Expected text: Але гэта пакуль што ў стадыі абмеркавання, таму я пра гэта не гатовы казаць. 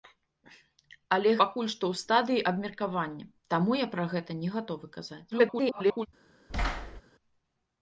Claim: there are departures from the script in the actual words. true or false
true